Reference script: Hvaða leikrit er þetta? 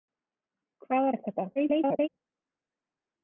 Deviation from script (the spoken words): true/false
true